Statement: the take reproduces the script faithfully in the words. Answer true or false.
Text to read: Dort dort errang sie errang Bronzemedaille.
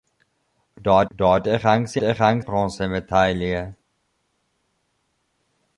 true